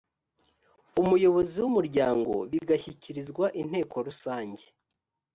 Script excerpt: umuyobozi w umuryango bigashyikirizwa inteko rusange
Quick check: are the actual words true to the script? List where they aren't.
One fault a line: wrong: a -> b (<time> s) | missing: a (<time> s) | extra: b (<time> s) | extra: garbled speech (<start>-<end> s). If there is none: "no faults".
no faults